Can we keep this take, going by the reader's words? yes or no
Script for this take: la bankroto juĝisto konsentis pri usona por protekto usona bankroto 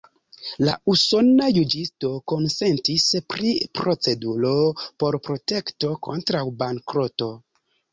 no